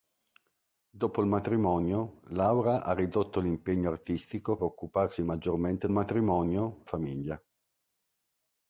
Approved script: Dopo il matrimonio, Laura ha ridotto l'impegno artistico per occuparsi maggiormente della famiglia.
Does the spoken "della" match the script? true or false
false